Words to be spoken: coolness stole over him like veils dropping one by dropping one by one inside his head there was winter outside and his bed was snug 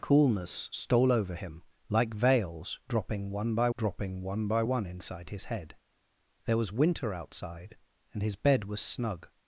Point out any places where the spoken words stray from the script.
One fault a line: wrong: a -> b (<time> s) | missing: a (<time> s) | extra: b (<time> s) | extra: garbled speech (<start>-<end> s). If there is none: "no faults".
no faults